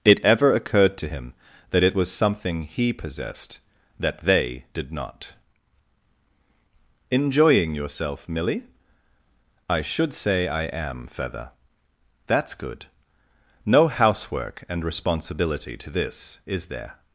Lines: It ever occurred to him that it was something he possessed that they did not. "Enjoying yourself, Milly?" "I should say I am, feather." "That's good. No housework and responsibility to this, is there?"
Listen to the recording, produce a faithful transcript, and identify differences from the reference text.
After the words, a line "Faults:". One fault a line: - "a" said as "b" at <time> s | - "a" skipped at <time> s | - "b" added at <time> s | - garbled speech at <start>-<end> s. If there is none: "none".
It ever occurred to him that it was something he possessed that they did not. "Enjoying yourself, Milly?" "I should say I am, feather." "That's good. No housework and responsibility to this, is there?"
Faults:
none